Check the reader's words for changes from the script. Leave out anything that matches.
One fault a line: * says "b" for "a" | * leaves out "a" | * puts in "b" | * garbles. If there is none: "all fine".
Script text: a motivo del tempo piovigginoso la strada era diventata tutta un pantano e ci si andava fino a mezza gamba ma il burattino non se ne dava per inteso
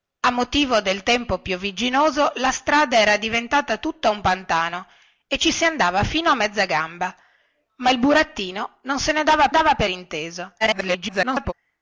* puts in "dava"
* garbles